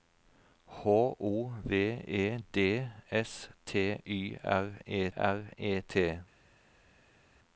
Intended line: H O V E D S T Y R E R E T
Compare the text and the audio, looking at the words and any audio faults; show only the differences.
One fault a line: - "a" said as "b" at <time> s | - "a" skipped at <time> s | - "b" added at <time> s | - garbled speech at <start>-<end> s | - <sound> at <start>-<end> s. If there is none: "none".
none